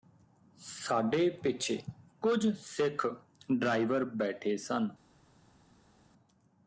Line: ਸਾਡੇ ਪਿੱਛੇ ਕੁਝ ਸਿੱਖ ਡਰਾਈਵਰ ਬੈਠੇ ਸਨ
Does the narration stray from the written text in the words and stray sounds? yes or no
no